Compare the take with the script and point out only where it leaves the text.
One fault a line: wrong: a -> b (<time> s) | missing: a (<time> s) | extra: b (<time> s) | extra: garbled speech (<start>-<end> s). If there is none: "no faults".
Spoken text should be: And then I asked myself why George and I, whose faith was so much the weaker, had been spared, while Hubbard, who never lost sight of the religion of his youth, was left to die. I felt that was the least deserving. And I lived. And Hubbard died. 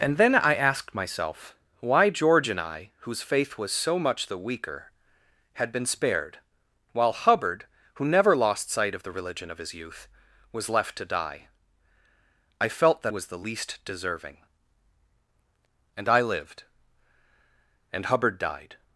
no faults